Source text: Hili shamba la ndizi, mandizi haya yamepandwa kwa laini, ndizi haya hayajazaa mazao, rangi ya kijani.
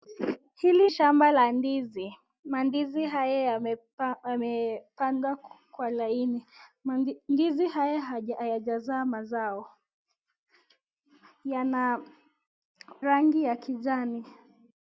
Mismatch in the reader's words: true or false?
false